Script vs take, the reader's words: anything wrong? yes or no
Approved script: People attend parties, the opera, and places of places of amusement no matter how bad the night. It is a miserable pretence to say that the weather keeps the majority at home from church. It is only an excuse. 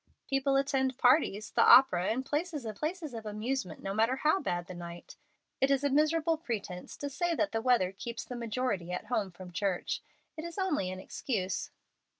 no